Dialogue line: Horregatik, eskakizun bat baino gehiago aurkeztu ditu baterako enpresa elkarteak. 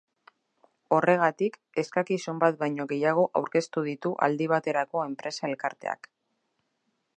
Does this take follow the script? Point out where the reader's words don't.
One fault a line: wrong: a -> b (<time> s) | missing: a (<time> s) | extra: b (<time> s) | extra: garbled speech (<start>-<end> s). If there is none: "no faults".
extra: aldi (4.3 s)